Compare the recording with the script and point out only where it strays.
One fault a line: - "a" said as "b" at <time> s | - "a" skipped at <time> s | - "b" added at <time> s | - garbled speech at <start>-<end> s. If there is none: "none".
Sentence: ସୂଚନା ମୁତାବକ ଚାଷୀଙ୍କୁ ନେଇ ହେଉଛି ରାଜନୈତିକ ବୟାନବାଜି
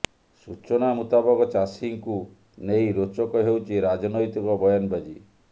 - "ରୋଚକ" added at 3.0 s